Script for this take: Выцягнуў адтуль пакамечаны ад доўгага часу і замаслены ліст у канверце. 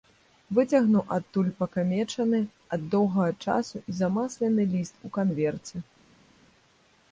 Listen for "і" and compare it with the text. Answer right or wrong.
right